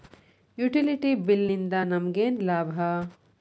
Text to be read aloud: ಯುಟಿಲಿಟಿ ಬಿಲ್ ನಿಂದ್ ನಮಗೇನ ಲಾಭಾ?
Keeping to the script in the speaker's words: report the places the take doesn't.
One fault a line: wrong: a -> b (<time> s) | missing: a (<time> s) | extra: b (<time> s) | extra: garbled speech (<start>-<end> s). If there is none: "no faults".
no faults